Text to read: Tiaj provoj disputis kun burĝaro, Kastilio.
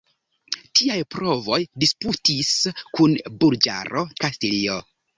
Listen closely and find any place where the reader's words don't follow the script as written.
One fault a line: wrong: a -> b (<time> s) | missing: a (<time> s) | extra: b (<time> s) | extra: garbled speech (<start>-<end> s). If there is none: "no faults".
no faults